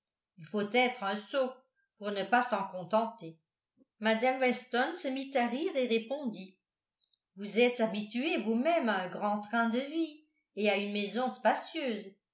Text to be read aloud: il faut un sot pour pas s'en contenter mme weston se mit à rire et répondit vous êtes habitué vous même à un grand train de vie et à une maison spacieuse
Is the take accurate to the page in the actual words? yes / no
no